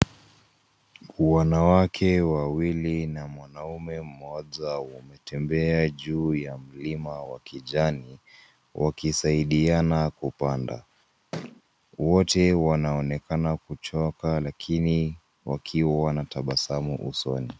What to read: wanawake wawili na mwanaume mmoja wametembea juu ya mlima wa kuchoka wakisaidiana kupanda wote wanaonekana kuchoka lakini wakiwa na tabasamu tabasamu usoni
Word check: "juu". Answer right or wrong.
right